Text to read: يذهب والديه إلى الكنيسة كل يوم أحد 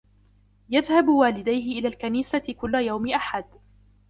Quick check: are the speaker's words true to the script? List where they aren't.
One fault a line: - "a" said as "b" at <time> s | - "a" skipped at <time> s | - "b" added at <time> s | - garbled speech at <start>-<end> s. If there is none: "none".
none